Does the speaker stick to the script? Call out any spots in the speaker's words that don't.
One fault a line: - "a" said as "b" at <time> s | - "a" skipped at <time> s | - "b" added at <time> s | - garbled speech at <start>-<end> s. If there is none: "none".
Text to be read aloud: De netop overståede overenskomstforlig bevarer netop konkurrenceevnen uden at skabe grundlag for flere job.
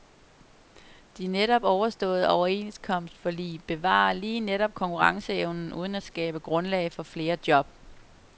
- "lige" added at 4.1 s